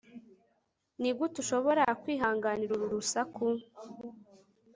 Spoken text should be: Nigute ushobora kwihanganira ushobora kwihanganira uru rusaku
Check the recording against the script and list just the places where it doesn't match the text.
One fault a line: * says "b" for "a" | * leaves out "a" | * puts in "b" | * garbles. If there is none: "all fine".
* leaves out "ushobora kwihanganira"